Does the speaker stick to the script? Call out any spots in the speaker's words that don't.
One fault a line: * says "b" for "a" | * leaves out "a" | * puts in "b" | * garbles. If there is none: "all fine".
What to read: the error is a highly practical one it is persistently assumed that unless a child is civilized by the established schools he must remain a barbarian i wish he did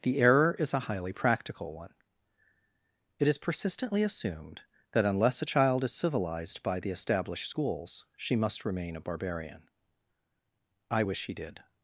* says "she" for "he"